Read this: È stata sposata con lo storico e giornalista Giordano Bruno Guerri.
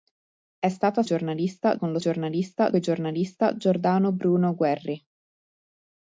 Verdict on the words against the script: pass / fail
fail